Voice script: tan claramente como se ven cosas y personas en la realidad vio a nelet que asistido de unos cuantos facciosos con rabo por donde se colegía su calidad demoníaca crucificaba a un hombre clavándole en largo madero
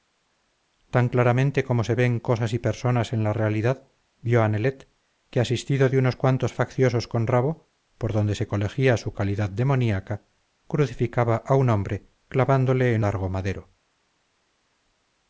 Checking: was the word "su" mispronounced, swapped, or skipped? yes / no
no